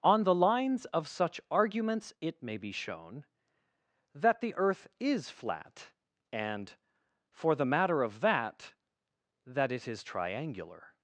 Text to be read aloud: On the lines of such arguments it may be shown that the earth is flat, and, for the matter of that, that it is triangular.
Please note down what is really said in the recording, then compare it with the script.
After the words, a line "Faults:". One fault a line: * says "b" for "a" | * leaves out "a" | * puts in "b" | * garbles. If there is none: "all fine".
On the lines of such arguments it may be shown that the earth is flat, and, for the matter of that, that it is triangular.
Faults:
all fine